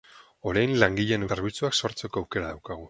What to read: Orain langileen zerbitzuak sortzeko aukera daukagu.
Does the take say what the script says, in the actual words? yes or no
yes